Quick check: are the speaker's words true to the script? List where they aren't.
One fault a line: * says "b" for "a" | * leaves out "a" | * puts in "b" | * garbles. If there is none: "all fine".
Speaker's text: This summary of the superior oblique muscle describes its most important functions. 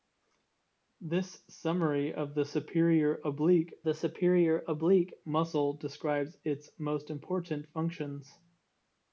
* puts in "the superior oblique"